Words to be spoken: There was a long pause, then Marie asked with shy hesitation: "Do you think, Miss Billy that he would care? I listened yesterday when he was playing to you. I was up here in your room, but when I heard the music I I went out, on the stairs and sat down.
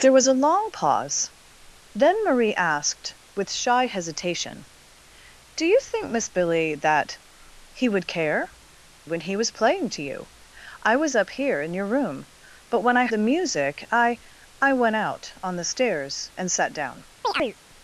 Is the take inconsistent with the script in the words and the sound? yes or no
yes